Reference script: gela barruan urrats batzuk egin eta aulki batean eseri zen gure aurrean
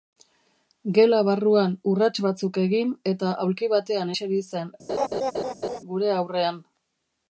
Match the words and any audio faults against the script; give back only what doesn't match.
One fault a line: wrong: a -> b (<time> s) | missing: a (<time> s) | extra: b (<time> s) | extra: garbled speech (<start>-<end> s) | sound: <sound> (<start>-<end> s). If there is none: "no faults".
sound: laugh (4.9-5.8 s)